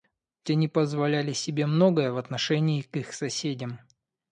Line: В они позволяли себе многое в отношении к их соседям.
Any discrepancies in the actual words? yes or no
no